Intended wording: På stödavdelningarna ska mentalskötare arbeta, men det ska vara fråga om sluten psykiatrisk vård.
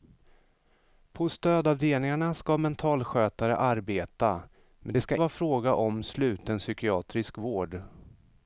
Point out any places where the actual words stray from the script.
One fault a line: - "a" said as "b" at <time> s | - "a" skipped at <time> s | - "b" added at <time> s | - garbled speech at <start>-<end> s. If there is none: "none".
none